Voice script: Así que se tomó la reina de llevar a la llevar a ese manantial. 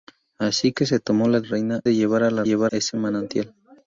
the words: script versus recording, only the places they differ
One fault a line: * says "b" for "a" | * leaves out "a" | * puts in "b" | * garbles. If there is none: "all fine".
all fine